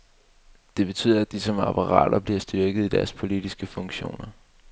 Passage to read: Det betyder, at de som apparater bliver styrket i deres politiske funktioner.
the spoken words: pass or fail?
pass